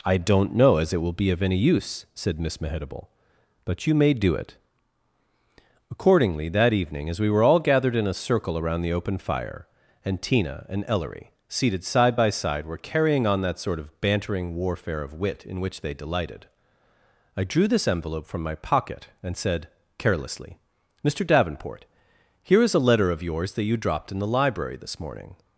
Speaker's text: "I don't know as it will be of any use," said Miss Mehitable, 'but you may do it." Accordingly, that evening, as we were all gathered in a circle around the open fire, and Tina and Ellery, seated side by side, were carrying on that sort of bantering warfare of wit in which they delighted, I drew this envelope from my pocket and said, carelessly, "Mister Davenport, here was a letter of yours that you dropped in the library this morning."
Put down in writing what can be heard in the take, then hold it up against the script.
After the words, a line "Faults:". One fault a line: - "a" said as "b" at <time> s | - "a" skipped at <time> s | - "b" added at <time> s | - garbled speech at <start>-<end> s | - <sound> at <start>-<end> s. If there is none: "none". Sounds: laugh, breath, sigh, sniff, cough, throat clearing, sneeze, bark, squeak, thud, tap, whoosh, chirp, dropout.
"I don't know as it will be of any use," said Miss Mehitable, 'but you may do it." Accordingly, that evening, as we were all gathered in a circle around the open fire, and Tina and Ellery, seated side by side, were carrying on that sort of bantering warfare of wit in which they delighted, I drew this envelope from my pocket and said, carelessly, "Mister Davenport, here is a letter of yours that you dropped in the library this morning."
Faults:
- "was" said as "is" at 22.6 s